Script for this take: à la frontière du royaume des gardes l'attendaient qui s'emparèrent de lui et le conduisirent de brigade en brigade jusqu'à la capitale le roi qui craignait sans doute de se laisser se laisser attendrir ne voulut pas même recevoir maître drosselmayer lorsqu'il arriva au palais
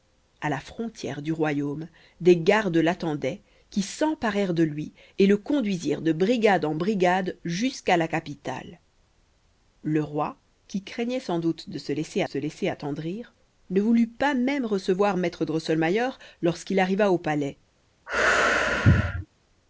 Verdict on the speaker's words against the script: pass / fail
pass